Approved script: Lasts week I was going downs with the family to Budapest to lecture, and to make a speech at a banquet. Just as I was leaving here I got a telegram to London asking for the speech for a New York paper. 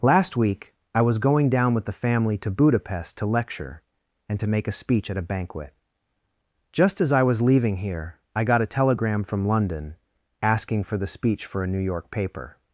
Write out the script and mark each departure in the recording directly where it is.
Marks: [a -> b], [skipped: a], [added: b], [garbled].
[Lasts -> Last] week I was going [downs -> down] with the family to Budapest to lecture, and to make a speech at a banquet. Just as I was leaving here I got a telegram [to -> from] London asking for the speech for a New York paper.